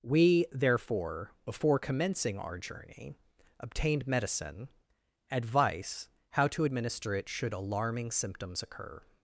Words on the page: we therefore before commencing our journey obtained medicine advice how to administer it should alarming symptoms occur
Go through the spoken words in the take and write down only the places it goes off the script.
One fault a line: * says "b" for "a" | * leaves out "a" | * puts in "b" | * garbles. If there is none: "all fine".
all fine